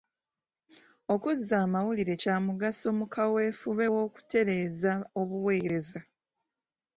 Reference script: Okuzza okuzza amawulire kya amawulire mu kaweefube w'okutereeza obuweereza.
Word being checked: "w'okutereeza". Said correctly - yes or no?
yes